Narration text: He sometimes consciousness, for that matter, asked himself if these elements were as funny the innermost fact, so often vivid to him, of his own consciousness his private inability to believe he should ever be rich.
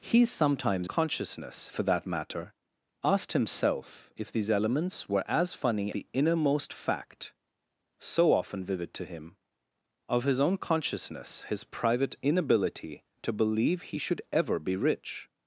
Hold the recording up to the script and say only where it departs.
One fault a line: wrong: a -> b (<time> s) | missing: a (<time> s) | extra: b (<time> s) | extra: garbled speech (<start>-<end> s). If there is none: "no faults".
no faults